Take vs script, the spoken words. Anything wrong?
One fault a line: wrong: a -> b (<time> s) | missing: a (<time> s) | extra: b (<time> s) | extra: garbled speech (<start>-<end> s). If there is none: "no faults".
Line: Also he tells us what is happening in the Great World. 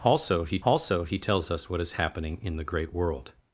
extra: also he (0.6 s)